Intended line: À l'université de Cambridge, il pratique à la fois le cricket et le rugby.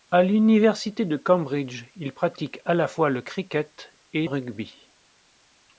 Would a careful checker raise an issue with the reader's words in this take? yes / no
yes